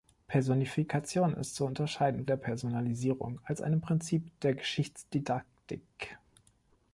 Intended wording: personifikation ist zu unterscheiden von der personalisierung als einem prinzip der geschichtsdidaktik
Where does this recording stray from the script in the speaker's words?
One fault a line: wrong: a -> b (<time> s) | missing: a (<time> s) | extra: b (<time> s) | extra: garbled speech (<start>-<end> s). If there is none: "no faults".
missing: von (2.2 s)